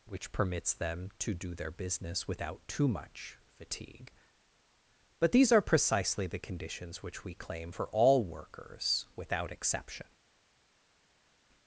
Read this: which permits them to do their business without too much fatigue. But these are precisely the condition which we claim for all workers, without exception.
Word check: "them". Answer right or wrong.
right